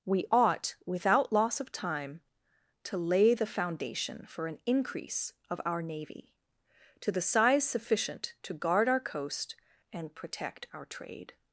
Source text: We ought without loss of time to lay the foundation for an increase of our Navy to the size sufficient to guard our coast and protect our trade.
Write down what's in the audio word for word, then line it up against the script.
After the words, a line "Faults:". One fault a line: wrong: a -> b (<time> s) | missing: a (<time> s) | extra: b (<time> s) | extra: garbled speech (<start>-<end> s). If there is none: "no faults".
We ought without loss of time to lay the foundation for an increase of our Navy to the size sufficient to guard our coast and protect our trade.
Faults:
no faults